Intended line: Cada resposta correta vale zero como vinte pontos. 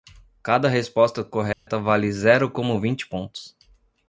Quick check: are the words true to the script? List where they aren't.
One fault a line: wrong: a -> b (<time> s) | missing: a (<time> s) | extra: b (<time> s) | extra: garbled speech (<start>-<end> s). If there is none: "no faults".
no faults